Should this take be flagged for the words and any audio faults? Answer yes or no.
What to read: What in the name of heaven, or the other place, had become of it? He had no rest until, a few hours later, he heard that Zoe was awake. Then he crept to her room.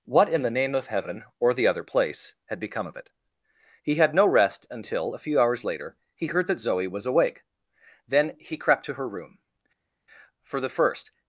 yes